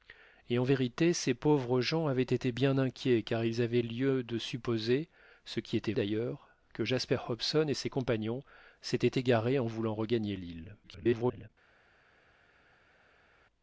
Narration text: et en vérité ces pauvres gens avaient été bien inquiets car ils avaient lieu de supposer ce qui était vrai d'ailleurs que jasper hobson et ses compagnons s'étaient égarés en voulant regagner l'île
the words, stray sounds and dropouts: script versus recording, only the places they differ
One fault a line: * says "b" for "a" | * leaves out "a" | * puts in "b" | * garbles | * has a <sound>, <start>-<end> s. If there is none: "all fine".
* leaves out "vrai"
* garbles